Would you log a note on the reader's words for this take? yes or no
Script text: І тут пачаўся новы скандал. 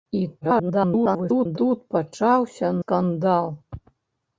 yes